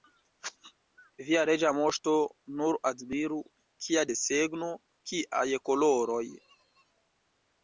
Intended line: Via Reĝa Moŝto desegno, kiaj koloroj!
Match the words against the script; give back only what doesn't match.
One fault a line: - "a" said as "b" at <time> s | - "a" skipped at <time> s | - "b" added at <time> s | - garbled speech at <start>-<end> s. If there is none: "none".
- "nur admiru kia" added at 2.6 s